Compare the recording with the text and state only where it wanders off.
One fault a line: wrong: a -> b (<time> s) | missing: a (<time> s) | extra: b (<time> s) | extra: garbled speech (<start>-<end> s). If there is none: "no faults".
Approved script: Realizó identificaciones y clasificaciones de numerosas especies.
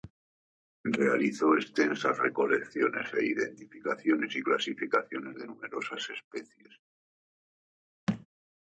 extra: extensas recolecciones e (1.6 s)